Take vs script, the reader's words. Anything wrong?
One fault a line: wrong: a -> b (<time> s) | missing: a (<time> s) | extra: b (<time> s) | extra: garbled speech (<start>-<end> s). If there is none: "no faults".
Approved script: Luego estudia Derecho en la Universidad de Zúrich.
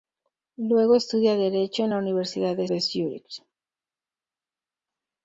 extra: de (2.7 s)